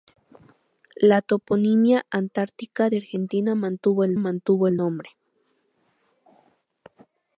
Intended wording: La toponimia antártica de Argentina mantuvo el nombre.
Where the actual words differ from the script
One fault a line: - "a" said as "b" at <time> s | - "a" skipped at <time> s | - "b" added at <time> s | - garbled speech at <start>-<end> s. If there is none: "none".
- "mantuvo el" added at 4.1 s